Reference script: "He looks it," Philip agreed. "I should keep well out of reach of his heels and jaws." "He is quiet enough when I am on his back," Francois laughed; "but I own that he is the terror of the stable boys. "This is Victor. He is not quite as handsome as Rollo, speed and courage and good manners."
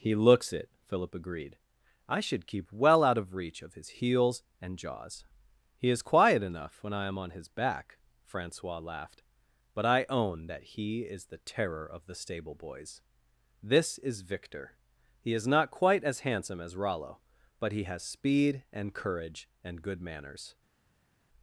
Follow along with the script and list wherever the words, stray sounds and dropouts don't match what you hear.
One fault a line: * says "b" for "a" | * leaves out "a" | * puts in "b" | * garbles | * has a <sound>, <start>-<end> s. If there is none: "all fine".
* puts in "but he has"